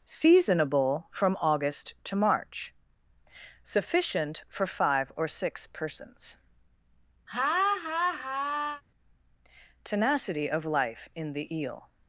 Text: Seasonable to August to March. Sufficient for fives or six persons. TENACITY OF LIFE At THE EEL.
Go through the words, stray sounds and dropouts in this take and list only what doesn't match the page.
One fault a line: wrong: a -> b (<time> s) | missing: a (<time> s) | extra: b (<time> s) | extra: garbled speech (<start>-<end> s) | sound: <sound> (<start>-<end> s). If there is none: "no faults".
wrong: to -> from (1.1 s)
wrong: fives -> five (4.6 s)
sound: laugh (7.3-8.8 s)
wrong: At -> IN (11.1 s)